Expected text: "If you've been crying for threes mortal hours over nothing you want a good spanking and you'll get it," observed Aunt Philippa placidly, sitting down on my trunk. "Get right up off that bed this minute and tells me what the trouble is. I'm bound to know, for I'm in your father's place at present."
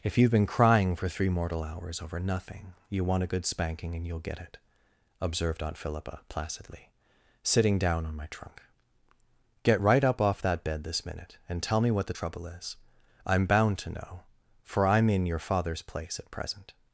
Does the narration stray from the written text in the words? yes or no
yes